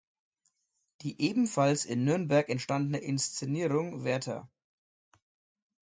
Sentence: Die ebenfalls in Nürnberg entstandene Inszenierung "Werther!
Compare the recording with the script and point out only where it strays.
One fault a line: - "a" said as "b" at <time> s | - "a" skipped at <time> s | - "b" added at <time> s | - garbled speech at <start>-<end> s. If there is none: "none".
none